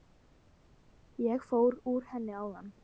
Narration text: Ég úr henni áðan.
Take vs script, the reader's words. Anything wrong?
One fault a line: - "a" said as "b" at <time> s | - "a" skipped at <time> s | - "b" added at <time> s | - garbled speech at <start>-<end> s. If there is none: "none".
- "fór" added at 1.5 s